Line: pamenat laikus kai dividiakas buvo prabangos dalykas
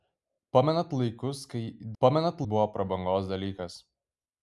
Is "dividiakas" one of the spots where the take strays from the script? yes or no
yes